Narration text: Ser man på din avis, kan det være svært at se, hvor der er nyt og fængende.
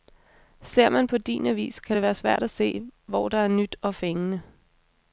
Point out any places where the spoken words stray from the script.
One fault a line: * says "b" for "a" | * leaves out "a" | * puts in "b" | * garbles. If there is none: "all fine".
all fine